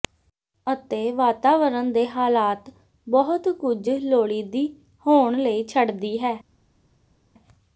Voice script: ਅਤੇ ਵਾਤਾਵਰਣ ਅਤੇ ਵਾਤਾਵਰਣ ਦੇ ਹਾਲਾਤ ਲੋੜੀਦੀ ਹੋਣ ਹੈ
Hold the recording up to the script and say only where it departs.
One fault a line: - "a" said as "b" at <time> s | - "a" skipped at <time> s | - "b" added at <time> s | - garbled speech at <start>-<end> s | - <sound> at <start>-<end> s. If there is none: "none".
- "ਅਤੇ ਵਾਤਾਵਰਣ ਦੇ ਹਾਲਾਤ" said as "ਦੇ ਹਾਲਾਤ ਬਹੁਤ ਕੁਝ" at 1.9 s
- "ਲਈ ਛੱਡਦੀ" added at 5.4 s